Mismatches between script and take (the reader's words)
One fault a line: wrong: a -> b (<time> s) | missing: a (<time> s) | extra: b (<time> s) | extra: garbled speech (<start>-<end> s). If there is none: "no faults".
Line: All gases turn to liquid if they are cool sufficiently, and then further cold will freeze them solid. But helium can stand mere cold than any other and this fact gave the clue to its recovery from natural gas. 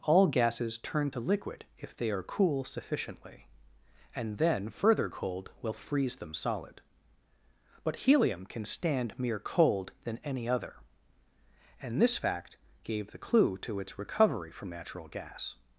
no faults